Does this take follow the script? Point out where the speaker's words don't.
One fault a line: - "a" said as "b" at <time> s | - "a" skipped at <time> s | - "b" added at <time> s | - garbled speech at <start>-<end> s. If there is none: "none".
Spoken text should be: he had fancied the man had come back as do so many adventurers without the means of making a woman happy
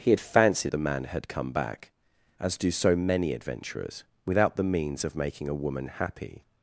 none